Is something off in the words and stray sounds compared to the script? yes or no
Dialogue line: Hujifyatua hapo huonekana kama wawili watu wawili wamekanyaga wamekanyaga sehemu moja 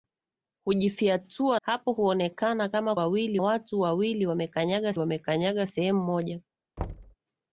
yes